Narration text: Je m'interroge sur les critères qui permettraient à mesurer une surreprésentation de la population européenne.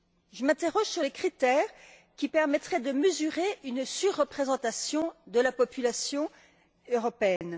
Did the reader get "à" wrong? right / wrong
wrong